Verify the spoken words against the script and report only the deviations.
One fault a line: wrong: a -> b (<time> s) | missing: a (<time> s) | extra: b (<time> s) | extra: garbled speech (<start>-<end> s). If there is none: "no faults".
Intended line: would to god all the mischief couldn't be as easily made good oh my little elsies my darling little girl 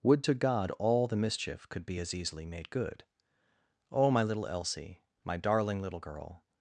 wrong: couldn't -> could (1.7 s)
wrong: elsies -> elsie (4.5 s)